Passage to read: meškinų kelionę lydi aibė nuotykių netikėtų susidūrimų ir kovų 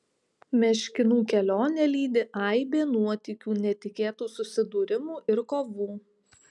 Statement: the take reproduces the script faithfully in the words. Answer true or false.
true